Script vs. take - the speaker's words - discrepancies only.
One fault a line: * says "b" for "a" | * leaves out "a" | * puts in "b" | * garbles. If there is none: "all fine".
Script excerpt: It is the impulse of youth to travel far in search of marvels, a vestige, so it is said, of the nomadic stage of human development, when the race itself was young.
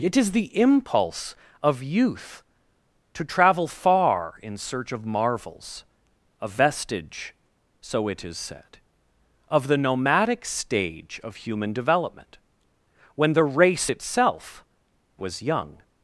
all fine